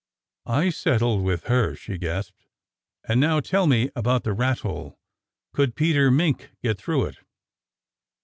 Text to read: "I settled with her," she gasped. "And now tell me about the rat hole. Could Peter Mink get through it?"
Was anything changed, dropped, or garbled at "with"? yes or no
no